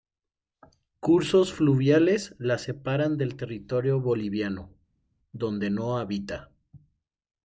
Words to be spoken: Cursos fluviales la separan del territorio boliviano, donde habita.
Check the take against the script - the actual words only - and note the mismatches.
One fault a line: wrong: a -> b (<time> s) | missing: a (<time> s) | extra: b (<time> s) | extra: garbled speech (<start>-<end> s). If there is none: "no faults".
extra: no (5.7 s)